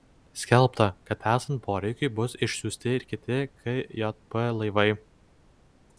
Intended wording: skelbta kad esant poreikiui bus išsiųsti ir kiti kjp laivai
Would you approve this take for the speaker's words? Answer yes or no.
yes